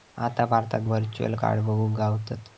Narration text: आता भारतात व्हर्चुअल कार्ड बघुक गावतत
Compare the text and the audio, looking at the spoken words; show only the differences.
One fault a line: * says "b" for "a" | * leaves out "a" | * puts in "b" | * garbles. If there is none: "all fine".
all fine